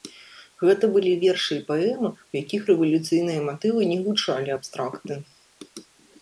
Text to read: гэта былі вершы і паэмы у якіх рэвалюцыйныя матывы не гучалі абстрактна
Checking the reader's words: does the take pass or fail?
pass